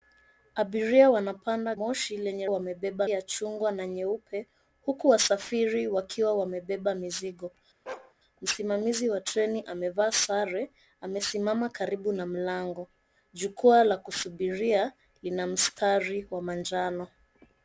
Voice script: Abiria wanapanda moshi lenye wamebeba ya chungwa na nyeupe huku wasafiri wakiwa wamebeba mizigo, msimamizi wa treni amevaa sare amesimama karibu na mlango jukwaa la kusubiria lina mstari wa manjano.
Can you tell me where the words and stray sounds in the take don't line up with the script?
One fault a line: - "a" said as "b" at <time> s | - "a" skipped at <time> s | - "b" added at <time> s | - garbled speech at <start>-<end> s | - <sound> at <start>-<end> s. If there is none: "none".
- bark at 7.9-8.1 s